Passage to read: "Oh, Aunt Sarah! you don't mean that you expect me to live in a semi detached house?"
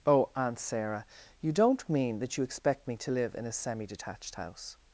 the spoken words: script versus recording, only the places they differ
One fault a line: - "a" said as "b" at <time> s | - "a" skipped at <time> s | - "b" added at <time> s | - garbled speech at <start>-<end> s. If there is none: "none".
none